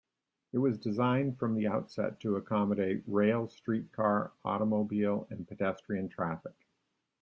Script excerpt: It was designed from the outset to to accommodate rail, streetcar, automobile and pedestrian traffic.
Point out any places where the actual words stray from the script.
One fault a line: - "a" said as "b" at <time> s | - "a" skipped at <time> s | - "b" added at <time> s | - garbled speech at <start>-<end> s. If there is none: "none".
- "to" skipped at 2.4 s